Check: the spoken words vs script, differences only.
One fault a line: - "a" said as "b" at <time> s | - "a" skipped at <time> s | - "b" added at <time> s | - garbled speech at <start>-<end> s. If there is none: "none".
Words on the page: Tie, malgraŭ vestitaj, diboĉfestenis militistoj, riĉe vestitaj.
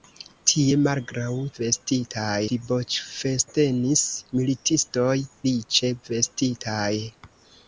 none